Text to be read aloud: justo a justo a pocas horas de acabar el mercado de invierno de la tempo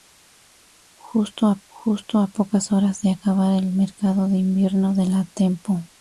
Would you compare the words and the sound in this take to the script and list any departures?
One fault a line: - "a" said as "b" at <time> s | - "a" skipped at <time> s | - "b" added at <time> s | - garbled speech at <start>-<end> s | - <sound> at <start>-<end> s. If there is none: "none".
none